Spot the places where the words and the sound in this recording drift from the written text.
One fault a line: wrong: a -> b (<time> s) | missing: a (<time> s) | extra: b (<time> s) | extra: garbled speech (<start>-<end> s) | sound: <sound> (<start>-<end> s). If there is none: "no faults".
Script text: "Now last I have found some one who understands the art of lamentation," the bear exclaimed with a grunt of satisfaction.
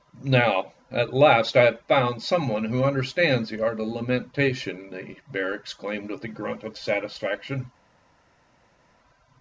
extra: at (0.9 s)